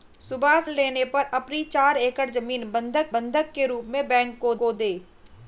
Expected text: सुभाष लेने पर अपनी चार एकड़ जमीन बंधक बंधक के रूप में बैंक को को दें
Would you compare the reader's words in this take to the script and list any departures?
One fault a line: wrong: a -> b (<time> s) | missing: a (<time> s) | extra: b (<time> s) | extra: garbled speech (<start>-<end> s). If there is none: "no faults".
no faults